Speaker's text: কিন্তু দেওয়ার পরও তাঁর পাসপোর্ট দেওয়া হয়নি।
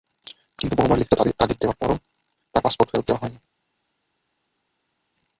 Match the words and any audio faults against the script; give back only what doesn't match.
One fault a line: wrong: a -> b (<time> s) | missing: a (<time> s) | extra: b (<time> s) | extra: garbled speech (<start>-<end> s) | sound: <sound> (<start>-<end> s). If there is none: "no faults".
extra: বহুবার লিখিত তাগিদ (0.8 s)
extra: ফেরত (2.9 s)